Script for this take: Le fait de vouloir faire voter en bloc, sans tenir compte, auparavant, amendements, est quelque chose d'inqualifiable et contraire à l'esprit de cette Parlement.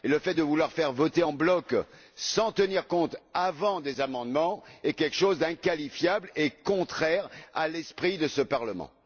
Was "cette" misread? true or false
true